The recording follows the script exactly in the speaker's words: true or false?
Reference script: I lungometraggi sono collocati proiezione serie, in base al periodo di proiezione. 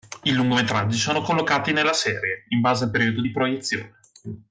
false